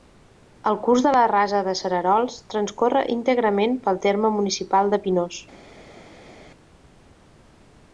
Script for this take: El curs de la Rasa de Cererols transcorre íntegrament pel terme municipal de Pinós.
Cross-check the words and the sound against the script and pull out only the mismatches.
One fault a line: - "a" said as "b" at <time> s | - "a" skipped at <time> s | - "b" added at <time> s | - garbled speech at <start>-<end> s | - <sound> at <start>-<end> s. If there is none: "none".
none